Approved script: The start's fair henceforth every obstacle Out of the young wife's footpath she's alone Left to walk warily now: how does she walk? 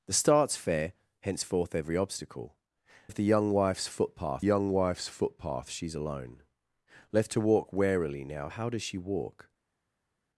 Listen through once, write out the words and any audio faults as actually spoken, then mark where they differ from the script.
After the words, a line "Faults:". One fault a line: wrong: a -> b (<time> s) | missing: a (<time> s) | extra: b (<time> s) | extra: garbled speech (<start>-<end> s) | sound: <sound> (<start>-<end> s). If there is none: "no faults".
The start's fair henceforth every obstacle Of the young wife's footpath young wife's footpath she's alone Left to walk warily now: how does she walk?
Faults:
missing: Out (2.6 s)
extra: young wife's footpath (4.4 s)